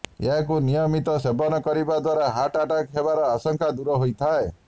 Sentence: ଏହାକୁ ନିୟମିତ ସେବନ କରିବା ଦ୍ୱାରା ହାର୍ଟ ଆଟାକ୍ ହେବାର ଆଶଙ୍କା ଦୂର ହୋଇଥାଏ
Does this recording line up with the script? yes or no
yes